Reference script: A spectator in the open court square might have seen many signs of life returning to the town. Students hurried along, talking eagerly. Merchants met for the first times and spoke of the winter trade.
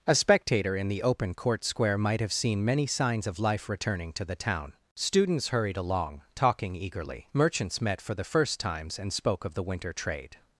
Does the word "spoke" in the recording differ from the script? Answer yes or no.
no